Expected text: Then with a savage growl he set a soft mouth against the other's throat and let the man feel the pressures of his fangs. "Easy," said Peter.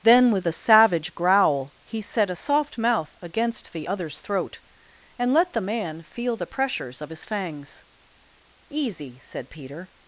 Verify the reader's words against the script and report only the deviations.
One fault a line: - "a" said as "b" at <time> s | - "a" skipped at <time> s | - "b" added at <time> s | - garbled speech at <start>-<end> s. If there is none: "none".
none